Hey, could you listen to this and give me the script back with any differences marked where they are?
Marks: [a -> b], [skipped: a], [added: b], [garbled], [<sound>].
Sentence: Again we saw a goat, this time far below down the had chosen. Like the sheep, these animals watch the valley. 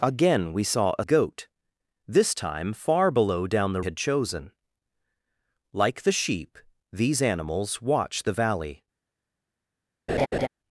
Again we saw a goat, this time far below down the had chosen. Like the sheep, these animals watch the valley. [laugh]